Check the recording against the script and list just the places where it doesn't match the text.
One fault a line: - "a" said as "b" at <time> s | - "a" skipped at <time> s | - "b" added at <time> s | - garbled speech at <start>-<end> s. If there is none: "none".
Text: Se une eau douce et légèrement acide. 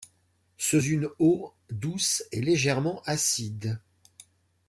none